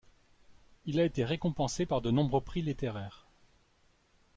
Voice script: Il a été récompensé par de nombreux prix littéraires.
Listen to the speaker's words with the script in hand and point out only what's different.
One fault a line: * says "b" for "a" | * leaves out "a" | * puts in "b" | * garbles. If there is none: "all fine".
all fine